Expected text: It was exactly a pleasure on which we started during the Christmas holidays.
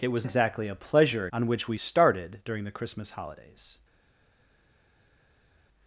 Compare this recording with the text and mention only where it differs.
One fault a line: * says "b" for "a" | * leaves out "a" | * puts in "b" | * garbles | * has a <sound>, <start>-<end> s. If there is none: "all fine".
all fine